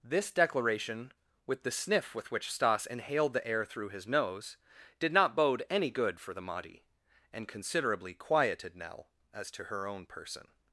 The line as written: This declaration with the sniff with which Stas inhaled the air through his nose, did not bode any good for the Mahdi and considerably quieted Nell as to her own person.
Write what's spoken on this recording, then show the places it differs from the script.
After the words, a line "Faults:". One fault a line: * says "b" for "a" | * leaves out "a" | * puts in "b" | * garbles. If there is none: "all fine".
This declaration with the sniff with which Stas inhaled the air through his nose, did not bode any good for the Mahdi and considerably quieted Nell as to her own person.
Faults:
all fine